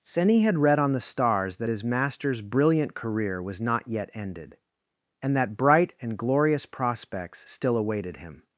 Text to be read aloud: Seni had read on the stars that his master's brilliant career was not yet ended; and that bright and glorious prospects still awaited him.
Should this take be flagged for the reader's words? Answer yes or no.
no